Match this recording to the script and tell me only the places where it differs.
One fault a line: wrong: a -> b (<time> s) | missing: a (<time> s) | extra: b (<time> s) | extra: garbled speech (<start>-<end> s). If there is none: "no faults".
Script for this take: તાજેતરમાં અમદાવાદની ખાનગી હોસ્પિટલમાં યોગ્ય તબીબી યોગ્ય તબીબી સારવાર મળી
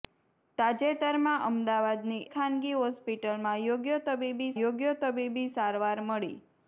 no faults